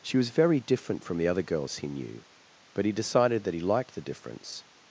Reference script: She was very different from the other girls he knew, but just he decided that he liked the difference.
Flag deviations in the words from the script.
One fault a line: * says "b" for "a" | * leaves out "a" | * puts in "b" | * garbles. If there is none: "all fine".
* leaves out "just"